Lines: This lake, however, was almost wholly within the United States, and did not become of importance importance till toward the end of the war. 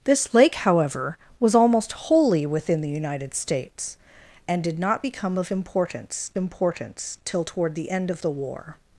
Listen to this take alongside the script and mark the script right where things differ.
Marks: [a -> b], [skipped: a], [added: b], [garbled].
This lake, however, was almost wholly within the United States, and did not become of importance importance till toward the end of the war.